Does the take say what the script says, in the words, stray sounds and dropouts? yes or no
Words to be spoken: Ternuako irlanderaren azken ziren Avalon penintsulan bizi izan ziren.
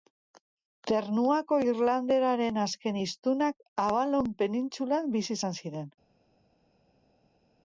no